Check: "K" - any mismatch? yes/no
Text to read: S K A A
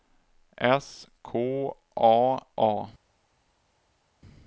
no